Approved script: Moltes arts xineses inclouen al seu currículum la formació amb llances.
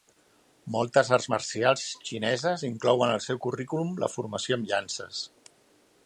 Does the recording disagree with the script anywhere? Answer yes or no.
yes